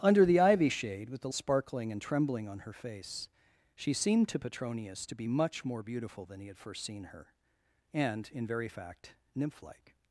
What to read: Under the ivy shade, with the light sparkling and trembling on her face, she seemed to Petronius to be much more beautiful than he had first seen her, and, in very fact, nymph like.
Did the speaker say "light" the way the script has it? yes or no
no